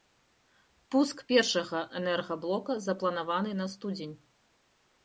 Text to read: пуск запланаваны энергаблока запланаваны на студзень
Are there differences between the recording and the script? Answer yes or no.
yes